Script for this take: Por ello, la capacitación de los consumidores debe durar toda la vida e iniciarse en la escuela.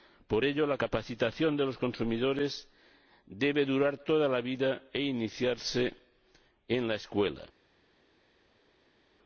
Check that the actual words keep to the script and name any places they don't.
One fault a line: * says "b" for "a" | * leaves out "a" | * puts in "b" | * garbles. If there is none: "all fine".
all fine